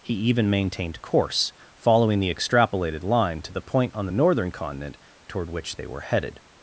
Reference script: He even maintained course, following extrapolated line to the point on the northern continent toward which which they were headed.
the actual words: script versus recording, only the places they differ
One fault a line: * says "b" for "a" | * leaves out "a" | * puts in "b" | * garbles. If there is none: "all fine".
* puts in "the"
* leaves out "which"